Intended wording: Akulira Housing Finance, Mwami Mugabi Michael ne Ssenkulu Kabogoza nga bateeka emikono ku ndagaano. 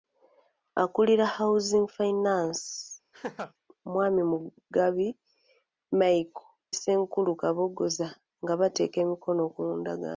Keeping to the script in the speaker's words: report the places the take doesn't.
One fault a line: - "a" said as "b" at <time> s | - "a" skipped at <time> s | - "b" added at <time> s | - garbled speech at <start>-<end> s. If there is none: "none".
- "ne" skipped at 6.5 s